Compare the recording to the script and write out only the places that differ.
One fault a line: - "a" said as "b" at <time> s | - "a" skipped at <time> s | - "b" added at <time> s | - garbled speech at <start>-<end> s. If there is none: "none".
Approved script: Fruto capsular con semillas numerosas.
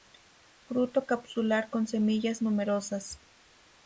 none